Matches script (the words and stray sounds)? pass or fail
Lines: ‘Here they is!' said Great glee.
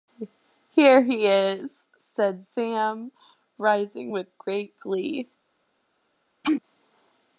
fail